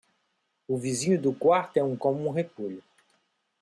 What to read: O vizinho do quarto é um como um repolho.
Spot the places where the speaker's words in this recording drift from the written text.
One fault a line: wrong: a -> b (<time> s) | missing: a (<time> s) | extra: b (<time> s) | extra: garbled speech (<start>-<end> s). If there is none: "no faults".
no faults